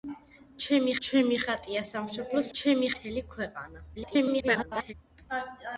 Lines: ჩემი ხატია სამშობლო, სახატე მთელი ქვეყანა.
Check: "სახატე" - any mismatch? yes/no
yes